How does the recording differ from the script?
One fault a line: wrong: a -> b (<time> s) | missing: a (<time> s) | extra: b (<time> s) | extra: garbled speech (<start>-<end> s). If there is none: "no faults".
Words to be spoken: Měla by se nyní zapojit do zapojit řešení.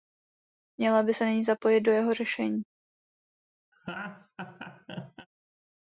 wrong: zapojit -> jeho (1.9 s)